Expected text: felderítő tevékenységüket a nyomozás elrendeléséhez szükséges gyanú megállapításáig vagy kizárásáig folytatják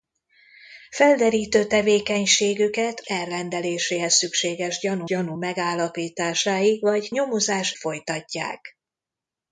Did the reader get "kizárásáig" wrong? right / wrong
wrong